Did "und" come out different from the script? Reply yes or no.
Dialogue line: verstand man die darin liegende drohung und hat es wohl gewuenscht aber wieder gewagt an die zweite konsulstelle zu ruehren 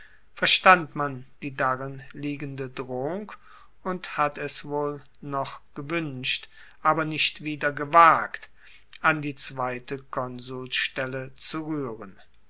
no